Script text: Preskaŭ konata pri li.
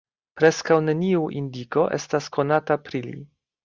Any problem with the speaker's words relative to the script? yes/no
yes